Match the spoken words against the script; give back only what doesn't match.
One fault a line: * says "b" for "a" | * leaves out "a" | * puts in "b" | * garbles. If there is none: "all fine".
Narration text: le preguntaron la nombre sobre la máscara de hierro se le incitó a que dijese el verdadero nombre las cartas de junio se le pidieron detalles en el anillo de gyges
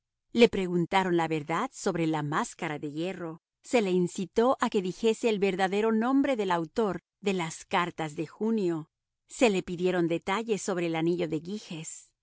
* says "verdad" for "nombre"
* puts in "del autor de"
* says "sobre" for "en"